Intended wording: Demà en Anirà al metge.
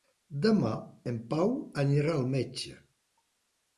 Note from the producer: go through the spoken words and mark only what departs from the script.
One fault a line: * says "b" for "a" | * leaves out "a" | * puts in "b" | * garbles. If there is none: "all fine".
* puts in "Pau"